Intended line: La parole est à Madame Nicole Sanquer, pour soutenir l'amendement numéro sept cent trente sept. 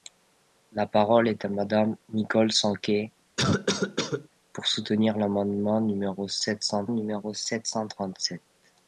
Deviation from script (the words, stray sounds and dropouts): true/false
true